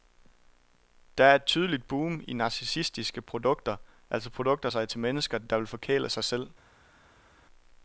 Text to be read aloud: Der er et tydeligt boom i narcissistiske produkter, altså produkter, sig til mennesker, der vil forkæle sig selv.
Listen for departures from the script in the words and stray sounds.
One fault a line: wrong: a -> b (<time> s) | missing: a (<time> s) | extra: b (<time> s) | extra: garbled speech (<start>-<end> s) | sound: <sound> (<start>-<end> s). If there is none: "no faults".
no faults